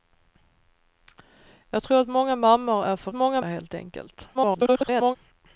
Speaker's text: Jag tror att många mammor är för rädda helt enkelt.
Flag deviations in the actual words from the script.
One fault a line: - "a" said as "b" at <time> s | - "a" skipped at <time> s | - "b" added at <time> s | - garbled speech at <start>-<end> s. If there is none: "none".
- "rädda" said as "många" at 3.1 s
- garbled speech at 4.3-5.2 s